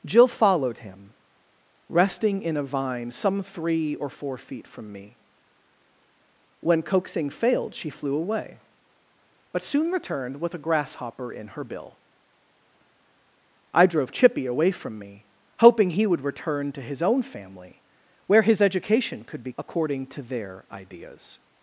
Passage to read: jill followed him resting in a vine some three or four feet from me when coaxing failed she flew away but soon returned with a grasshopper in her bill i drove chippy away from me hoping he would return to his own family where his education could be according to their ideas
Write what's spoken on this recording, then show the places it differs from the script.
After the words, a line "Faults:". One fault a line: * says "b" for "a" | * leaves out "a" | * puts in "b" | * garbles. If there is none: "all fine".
jill followed him resting in a vine some three or four feet from me when coaxing failed she flew away but soon returned with a grasshopper in her bill i drove chippy away from me hoping he would return to his own family where his education could be according to their ideas
Faults:
all fine